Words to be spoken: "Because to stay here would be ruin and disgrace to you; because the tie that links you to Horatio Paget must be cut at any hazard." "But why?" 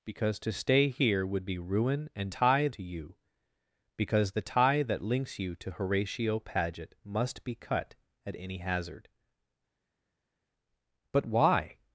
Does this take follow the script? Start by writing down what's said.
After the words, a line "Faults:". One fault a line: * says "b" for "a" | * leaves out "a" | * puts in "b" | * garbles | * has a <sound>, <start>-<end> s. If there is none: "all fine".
"Because to stay here would be ruin and tie to you; because the tie that links you to Horatio Paget must be cut at any hazard." "But why?"
Faults:
* says "tie" for "disgrace"